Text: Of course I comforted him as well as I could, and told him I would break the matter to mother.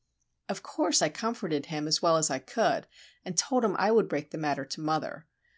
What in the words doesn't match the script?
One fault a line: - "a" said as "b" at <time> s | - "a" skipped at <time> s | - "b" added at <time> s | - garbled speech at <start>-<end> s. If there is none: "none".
none